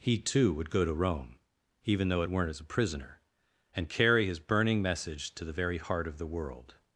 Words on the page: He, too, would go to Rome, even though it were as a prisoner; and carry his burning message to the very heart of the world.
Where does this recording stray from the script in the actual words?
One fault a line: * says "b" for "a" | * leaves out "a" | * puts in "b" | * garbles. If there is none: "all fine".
* says "weren't" for "were"